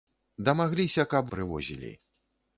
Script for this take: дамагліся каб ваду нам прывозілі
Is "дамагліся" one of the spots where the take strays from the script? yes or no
no